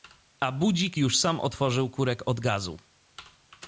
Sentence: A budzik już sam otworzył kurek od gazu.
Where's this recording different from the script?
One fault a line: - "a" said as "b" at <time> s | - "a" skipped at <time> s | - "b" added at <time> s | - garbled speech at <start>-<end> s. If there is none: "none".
none